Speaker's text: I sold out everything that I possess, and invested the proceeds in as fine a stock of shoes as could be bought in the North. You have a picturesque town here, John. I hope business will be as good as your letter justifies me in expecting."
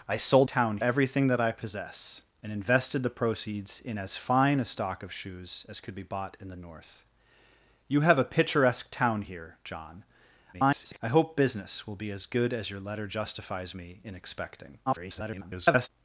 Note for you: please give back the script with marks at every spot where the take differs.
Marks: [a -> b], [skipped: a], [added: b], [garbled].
I sold [out -> town] everything that I possess, and invested the proceeds in as fine a stock of shoes as could be bought in the North. You have a picturesque town here, John. [garbled] I hope business will be as good as your letter justifies me in expecting." [garbled]